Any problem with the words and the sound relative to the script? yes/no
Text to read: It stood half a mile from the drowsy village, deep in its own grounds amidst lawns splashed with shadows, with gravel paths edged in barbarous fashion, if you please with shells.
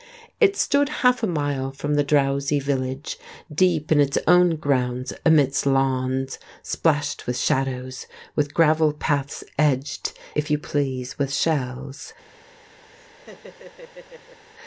yes